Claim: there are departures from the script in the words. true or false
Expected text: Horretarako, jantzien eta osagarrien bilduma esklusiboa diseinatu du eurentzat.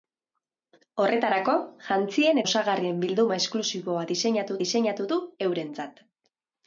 true